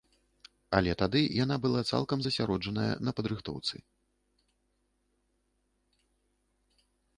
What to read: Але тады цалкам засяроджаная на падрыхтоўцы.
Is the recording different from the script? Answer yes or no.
yes